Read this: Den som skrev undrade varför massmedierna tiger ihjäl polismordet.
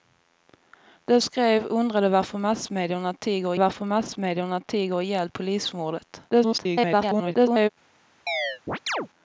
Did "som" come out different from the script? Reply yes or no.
yes